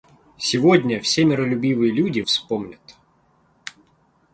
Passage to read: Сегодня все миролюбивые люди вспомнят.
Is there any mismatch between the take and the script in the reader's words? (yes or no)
no